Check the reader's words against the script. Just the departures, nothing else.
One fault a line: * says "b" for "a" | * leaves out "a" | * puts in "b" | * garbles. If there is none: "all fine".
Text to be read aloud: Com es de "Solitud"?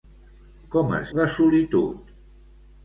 all fine